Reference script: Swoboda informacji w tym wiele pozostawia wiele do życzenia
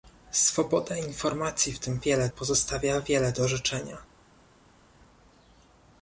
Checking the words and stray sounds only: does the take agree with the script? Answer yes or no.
yes